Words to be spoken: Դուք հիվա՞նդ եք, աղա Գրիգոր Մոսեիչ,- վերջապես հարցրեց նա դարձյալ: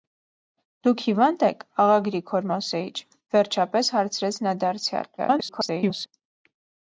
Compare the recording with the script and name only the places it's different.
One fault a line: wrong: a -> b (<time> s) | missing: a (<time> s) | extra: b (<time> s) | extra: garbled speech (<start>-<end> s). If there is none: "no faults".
extra: garbled speech (5.2-6.1 s)